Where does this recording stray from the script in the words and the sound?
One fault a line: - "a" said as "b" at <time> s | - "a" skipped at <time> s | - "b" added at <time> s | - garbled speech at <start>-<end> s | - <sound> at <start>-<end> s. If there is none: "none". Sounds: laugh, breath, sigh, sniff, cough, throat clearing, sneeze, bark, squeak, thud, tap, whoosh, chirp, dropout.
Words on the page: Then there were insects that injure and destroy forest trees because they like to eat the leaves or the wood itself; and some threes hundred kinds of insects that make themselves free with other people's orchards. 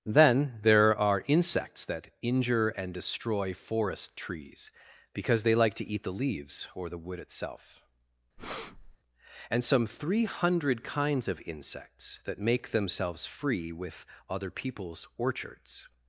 - "were" said as "are" at 1.0 s
- breath at 8.4-9.0 s
- "threes" said as "three" at 9.9 s